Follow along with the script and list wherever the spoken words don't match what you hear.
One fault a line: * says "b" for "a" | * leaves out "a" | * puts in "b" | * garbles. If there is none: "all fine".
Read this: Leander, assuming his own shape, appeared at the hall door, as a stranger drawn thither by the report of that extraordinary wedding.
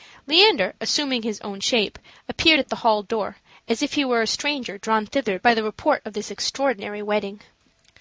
* puts in "if he were"
* says "this" for "that"